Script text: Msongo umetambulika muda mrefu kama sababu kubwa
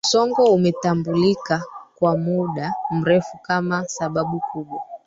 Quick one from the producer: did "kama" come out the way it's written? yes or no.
yes